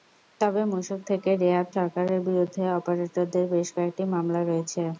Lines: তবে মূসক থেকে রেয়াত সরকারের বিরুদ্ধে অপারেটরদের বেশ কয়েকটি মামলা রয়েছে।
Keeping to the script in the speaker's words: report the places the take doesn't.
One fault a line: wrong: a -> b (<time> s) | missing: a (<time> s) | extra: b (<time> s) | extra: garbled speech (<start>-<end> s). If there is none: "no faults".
no faults